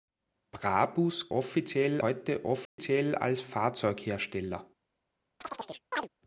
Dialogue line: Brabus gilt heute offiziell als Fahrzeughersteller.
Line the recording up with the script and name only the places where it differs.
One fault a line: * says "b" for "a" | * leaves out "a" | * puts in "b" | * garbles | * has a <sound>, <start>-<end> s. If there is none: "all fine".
* says "offiziell" for "gilt"
* has a dropout, 2.7-2.8 s
* has a chirp, 5.4-6.1 s